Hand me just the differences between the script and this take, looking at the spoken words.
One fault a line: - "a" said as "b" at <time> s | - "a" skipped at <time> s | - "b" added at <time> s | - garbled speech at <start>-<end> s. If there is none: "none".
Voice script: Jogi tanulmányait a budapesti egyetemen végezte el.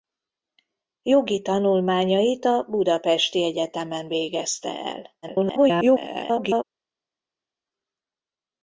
- garbled speech at 5.2-6.6 s